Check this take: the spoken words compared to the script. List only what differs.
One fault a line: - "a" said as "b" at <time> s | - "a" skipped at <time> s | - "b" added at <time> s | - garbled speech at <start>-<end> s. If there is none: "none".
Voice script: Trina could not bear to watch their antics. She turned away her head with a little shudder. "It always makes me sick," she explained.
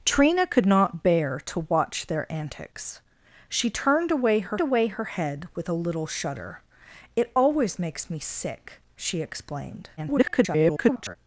- "away her" added at 4.6 s
- garbled speech at 10.0-11.2 s